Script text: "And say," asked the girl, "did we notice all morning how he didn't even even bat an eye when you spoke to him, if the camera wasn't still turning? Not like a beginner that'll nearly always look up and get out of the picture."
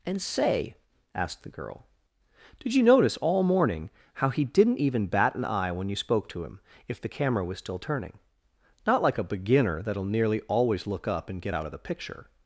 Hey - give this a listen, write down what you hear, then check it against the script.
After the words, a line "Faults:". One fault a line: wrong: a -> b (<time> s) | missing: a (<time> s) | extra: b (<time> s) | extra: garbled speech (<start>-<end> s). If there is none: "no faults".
"And say," asked the girl, "did you notice all morning how he didn't even bat an eye when you spoke to him, if the camera was still turning? Not like a beginner that'll nearly always look up and get out of the picture."
Faults:
wrong: we -> you (2.7 s)
missing: even (5.1 s)
wrong: wasn't -> was (7.4 s)